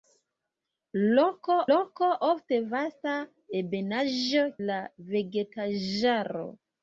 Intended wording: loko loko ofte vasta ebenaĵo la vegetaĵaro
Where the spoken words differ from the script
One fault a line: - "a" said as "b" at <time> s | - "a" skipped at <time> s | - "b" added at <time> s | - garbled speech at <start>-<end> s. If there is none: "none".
none